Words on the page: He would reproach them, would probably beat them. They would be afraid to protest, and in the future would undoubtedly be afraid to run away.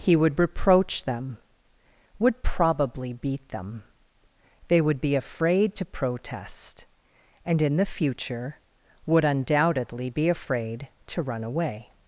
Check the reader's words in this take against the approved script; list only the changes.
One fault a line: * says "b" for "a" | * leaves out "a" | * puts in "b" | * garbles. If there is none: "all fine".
all fine